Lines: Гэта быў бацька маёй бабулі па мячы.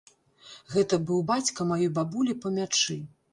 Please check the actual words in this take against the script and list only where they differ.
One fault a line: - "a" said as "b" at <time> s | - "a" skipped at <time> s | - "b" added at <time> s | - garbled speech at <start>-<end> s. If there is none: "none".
none